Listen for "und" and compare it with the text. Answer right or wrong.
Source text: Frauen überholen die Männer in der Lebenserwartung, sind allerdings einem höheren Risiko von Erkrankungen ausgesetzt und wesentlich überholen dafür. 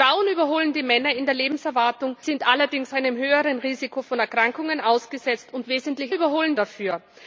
right